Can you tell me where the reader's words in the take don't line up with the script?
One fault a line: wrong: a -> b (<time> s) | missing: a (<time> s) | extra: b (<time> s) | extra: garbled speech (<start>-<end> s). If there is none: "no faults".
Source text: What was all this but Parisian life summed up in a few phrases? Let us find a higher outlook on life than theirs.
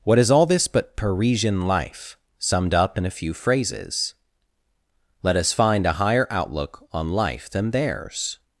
wrong: was -> is (0.2 s)